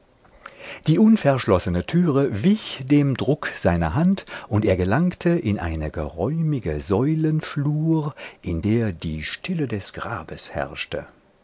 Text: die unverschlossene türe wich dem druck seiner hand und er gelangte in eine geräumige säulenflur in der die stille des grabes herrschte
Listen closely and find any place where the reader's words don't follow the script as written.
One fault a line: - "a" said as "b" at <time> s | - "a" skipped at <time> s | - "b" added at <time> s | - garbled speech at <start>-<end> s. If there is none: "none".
none